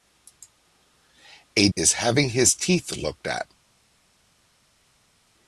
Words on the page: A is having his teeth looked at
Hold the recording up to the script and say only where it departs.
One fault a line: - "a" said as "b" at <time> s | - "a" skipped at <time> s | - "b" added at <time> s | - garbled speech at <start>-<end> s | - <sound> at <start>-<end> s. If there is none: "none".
none